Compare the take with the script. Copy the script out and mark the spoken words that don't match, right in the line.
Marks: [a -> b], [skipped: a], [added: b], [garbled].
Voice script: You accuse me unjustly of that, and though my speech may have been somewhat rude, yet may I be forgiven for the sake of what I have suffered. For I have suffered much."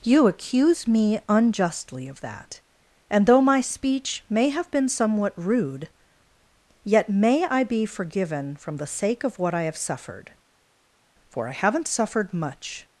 You accuse me unjustly of that, and though my speech may have been somewhat rude, yet may I be forgiven [for -> from] the sake of what I have suffered. For I [have -> haven't] suffered much."